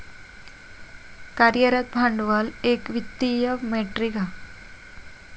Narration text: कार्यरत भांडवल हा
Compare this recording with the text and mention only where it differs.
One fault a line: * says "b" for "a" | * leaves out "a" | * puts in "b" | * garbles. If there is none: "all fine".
* puts in "एक वित्तीय मेट्रीक"